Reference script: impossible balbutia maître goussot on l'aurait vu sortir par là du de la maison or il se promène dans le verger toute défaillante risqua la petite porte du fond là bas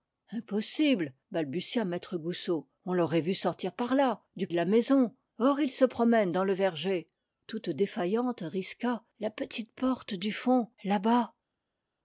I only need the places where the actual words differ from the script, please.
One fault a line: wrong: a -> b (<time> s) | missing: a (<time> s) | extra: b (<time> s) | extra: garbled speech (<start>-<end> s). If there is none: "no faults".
no faults